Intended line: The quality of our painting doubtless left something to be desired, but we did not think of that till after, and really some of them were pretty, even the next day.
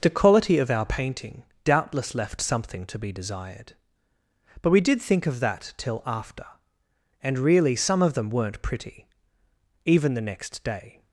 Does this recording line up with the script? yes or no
no